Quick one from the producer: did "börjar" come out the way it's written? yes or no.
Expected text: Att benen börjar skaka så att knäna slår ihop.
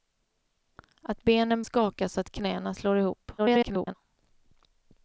no